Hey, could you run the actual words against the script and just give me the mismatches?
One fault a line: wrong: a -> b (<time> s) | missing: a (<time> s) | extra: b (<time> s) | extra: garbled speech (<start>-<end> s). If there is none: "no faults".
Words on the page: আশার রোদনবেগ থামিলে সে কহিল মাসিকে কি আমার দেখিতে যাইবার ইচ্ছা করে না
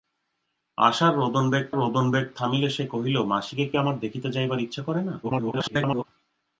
extra: রোদনবেগ (1.7 s)
extra: garbled speech (5.2-6.1 s)